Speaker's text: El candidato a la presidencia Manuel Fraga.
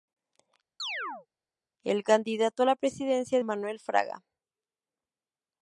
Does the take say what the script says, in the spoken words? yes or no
yes